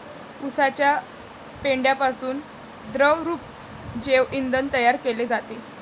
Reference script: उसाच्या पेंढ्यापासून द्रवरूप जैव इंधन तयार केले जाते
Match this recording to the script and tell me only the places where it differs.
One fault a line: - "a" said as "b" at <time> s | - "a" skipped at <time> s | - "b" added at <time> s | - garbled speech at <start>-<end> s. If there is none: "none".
none